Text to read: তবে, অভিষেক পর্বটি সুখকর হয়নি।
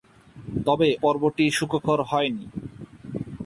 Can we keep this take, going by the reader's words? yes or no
no